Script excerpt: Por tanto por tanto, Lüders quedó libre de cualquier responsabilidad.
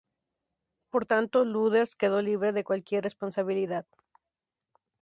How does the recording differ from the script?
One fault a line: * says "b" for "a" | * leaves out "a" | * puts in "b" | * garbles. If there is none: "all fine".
* leaves out "por tanto"